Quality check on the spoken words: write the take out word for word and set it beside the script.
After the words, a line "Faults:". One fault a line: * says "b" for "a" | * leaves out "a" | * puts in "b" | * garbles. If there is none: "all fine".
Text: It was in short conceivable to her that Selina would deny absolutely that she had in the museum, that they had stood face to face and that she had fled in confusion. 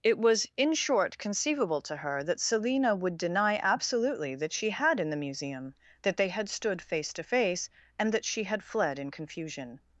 It was in short conceivable to her that Selina would deny absolutely that she had in the museum, that they had stood face to face and that she had fled in confusion.
Faults:
all fine